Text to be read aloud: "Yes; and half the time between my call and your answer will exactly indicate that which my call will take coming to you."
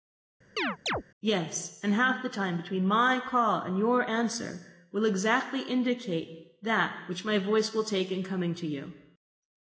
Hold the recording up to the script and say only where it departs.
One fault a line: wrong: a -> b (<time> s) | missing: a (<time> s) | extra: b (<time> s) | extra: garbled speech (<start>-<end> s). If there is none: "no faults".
wrong: call -> voice (7.4 s)
extra: in (8.1 s)